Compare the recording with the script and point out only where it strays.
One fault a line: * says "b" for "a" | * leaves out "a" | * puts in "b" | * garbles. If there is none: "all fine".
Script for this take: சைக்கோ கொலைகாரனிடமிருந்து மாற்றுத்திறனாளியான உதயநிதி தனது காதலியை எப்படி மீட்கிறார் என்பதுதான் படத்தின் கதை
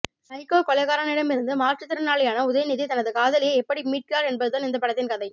* puts in "இந்த"